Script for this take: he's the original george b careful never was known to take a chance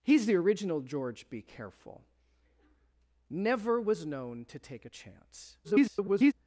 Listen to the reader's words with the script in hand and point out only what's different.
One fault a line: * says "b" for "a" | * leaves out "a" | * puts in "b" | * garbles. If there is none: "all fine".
* garbles